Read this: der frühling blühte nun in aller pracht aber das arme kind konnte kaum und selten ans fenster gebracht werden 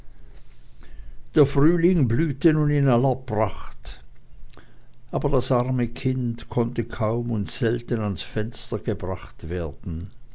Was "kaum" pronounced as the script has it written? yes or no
yes